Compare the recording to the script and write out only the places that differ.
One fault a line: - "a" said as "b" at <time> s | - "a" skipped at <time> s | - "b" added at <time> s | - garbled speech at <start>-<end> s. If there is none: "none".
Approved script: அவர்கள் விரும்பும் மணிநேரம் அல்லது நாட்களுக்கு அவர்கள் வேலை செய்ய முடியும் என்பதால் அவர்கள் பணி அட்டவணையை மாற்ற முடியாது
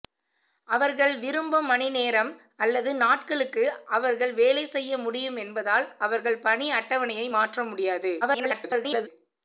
- garbled speech at 8.2-9.1 s